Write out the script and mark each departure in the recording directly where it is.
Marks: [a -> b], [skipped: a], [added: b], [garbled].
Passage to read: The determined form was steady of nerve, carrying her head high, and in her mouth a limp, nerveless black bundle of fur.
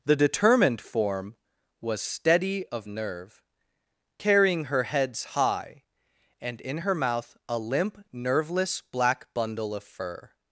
The determined form was steady of nerve, carrying her [head -> heads] high, and in her mouth a limp, nerveless black bundle of fur.